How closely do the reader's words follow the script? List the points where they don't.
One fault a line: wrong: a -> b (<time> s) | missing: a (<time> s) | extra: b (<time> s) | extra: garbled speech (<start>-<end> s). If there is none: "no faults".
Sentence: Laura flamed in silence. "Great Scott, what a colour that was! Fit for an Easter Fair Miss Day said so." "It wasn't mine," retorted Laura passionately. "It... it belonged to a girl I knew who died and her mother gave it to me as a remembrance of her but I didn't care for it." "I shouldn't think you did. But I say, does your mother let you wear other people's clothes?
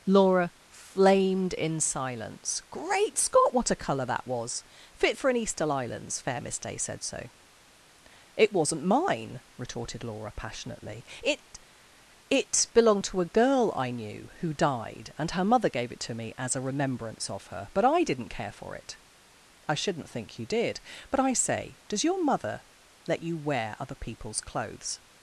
extra: islands (5.7 s)